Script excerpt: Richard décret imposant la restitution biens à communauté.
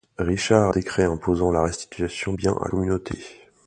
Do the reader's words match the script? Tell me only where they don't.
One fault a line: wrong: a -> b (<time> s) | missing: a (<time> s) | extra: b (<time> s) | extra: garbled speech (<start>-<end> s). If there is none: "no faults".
no faults